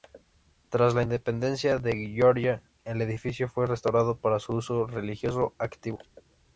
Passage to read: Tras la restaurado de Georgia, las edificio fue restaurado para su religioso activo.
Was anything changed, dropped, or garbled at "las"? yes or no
yes